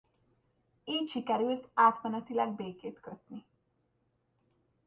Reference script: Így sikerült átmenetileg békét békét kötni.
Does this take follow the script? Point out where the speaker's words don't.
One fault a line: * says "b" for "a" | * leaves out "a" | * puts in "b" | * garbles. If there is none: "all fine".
* leaves out "békét"